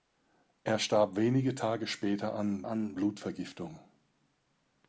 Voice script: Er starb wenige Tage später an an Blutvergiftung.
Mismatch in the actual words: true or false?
false